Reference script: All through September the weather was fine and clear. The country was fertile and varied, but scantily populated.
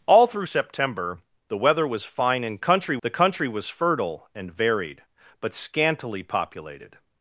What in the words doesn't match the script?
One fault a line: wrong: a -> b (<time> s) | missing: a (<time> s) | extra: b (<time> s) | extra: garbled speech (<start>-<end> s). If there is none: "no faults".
wrong: clear -> country (2.6 s)